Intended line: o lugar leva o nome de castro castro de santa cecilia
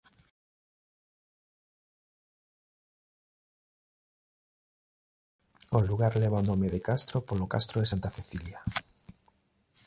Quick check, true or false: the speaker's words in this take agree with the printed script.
false